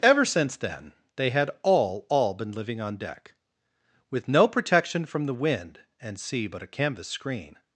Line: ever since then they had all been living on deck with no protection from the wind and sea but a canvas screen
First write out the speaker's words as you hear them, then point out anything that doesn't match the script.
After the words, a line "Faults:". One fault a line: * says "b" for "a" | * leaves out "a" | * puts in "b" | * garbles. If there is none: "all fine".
ever since then they had all all been living on deck with no protection from the wind and sea but a canvas screen
Faults:
* puts in "all"